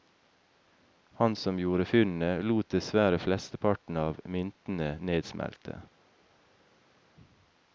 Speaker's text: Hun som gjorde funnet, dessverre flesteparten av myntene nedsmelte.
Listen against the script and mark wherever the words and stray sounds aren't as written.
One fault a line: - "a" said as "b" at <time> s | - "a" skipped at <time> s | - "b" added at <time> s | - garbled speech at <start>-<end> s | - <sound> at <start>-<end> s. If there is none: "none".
- "Hun" said as "Han" at 1.1 s
- "lot" added at 2.4 s